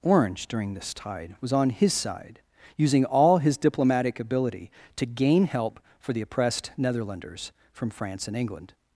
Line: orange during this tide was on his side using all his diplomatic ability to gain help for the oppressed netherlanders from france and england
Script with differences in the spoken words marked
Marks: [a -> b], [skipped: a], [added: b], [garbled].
orange during this tide was on his side using all his diplomatic ability to gain help for the oppressed netherlanders from france and england